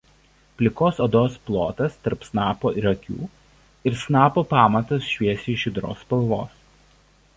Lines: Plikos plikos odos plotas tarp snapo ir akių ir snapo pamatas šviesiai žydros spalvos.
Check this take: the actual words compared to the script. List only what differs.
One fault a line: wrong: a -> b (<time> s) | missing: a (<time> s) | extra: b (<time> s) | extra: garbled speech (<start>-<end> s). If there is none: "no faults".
missing: plikos (1.0 s)